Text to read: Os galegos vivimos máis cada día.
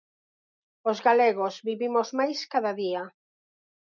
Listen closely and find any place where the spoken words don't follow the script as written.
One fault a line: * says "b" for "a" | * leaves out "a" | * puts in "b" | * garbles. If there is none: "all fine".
all fine